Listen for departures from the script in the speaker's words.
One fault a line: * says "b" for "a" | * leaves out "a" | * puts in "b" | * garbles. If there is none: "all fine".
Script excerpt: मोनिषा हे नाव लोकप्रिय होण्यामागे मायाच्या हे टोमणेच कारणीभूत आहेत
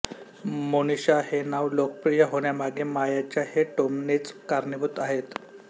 all fine